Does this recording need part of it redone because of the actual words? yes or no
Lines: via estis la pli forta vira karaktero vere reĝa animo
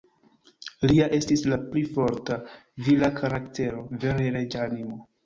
yes